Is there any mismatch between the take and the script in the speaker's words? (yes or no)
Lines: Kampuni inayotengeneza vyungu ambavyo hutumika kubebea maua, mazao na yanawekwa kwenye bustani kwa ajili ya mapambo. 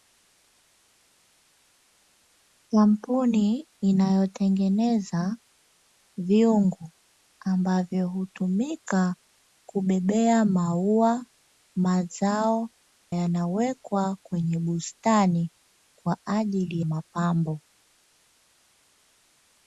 yes